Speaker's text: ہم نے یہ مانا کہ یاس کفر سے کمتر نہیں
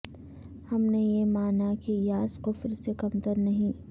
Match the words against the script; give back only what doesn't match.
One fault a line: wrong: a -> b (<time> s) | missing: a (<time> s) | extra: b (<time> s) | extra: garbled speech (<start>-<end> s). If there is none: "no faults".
no faults